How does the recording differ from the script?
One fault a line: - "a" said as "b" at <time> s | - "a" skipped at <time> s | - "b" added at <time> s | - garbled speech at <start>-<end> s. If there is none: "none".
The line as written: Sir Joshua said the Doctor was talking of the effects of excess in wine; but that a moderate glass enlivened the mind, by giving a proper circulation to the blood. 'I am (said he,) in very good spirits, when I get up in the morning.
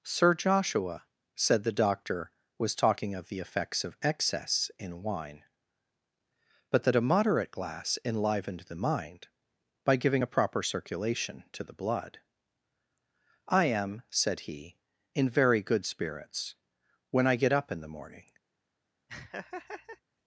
none